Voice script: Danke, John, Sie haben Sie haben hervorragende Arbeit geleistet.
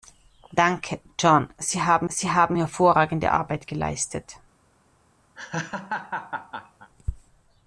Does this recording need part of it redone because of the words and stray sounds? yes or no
yes